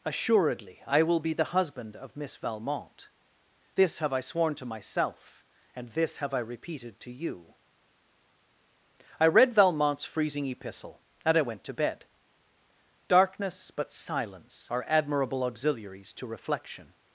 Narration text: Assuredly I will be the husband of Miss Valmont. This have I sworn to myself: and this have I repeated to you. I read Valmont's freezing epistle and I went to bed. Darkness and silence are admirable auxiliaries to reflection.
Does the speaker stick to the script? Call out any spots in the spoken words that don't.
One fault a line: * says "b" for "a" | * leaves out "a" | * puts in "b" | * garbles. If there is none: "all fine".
* says "but" for "and"